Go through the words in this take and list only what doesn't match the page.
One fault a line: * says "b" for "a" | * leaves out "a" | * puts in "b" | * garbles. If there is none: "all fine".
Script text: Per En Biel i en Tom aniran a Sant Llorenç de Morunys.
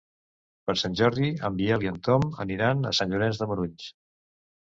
* puts in "Sant Jordi"